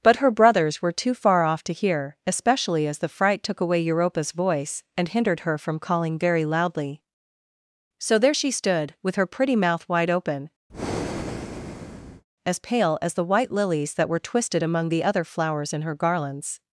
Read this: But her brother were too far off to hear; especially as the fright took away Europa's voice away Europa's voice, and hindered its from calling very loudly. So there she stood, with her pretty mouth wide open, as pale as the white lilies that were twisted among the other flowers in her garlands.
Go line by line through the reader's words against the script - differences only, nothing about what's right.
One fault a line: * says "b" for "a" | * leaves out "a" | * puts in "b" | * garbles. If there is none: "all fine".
* says "brothers" for "brother"
* leaves out "away Europa's voice"
* says "her" for "its"